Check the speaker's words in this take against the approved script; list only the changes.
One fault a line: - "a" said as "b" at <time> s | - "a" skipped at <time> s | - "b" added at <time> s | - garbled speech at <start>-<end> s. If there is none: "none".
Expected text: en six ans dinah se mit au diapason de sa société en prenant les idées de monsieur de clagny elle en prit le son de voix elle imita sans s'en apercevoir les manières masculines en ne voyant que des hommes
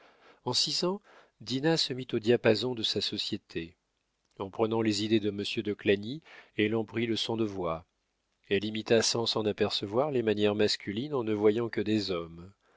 none